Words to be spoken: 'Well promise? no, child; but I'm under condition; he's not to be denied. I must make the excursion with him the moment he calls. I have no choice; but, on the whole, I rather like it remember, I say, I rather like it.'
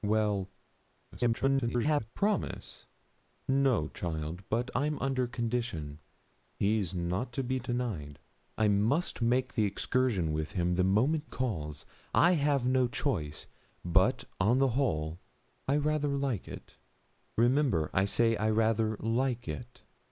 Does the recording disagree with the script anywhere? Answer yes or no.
yes